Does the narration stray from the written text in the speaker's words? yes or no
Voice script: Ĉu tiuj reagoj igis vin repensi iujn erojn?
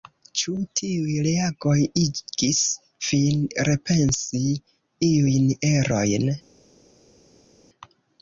no